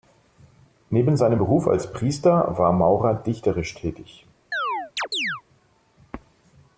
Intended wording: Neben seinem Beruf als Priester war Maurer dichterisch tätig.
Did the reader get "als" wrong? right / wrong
right